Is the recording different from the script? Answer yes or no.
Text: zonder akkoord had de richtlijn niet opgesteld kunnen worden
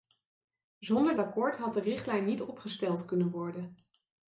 no